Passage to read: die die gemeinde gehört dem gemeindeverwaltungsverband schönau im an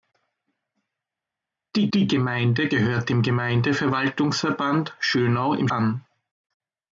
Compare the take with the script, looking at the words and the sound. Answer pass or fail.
pass